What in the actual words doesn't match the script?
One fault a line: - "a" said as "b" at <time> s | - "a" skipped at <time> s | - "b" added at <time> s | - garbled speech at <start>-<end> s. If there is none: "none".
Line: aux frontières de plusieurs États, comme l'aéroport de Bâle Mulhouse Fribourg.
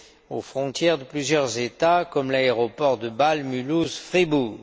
none